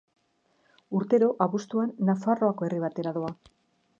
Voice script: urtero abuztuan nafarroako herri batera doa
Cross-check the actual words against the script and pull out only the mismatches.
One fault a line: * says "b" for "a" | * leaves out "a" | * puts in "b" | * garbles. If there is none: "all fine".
all fine